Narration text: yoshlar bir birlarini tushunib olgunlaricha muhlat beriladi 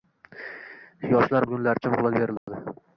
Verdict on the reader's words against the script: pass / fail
fail